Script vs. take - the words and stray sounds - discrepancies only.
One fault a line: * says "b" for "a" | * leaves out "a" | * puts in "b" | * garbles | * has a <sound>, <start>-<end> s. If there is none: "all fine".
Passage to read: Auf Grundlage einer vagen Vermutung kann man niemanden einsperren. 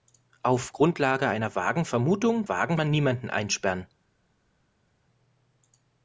* says "vagen" for "kann"